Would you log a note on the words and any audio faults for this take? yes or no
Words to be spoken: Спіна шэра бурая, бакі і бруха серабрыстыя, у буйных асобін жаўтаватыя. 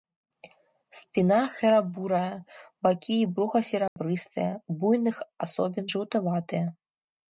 yes